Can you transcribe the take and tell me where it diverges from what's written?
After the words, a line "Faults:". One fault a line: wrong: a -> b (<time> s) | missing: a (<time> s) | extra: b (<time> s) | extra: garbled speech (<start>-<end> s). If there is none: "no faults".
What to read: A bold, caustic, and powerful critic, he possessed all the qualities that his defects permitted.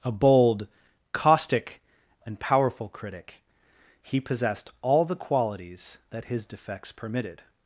A bold, caustic, and powerful critic, he possessed all the qualities that his defects permitted.
Faults:
no faults